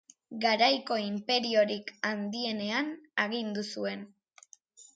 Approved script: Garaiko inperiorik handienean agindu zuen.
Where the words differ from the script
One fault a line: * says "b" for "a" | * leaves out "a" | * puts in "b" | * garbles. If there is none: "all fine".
all fine